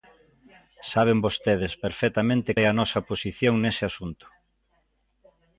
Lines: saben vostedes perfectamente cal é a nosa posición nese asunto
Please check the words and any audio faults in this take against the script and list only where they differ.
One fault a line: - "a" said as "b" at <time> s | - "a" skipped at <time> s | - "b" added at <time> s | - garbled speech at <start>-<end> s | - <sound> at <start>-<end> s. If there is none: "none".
- "cal" skipped at 2.5 s